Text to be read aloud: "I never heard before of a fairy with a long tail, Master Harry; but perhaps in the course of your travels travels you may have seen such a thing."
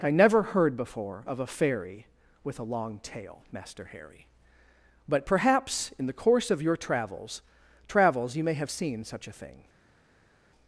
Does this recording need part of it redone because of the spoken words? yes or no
no